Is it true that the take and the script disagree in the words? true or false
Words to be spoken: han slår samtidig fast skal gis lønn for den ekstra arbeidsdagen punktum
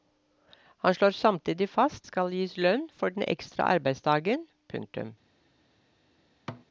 false